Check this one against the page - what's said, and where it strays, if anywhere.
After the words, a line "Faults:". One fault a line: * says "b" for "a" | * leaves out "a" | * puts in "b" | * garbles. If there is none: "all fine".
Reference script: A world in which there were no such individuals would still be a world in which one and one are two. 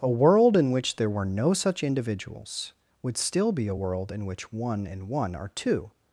A world in which there were no such individuals would still be a world in which one and one are two.
Faults:
all fine